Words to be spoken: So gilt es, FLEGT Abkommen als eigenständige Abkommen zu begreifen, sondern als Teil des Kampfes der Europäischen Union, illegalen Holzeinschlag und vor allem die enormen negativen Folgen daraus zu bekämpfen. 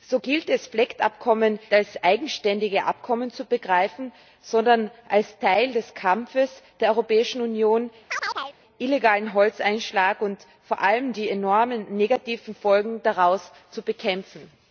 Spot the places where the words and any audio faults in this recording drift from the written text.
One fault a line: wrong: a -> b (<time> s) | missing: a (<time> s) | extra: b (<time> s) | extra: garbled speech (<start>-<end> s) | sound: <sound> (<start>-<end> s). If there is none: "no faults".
sound: chirp (8.1-8.6 s)